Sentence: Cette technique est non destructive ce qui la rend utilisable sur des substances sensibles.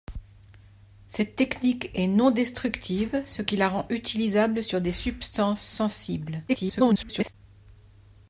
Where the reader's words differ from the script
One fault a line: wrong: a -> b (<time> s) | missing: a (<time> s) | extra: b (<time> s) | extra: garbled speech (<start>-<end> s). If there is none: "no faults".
extra: garbled speech (6.5-7.3 s)